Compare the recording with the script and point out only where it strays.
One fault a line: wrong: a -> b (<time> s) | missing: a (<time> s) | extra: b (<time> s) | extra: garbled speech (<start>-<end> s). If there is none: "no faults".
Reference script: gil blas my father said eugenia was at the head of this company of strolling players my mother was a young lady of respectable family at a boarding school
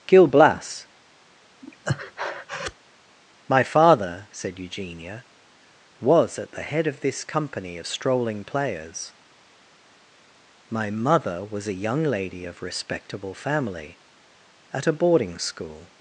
no faults